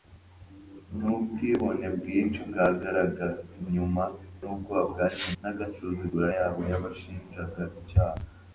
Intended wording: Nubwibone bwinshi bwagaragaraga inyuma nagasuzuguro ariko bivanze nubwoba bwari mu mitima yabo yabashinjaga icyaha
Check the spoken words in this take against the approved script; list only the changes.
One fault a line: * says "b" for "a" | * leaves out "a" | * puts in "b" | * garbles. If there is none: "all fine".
* leaves out "nagasuzuguro ariko bivanze"
* says "nagasuzuguro" for "mitima"